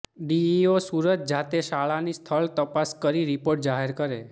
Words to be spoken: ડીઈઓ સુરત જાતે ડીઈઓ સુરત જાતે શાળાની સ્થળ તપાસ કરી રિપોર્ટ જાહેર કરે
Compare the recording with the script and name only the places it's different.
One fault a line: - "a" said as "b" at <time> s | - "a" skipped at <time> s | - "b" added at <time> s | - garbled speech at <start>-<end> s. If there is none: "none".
- "ડીઈઓ સુરત જાતે" skipped at 1.6 s